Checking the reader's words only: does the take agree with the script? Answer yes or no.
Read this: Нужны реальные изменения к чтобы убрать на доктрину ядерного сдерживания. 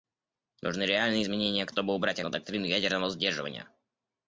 yes